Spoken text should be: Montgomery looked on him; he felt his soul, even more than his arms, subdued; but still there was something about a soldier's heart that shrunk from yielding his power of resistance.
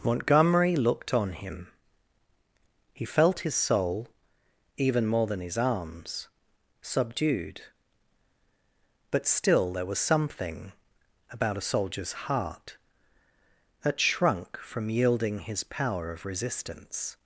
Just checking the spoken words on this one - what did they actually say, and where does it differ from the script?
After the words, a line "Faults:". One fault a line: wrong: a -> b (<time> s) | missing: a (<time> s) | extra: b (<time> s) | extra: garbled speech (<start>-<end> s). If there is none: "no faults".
Montgomery looked on him; he felt his soul, even more than his arms, subdued; but still there was something about a soldier's heart that shrunk from yielding his power of resistance.
Faults:
no faults